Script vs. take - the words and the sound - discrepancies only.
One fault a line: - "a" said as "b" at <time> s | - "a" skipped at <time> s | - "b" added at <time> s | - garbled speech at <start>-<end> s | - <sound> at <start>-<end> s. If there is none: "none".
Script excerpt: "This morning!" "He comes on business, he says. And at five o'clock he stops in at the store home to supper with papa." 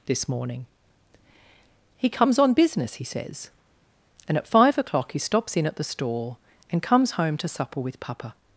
- "and comes" added at 6.7 s